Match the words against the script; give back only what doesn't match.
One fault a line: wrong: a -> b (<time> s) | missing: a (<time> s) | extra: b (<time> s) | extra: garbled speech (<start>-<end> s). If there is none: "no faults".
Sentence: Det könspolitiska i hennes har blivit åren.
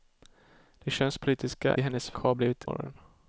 no faults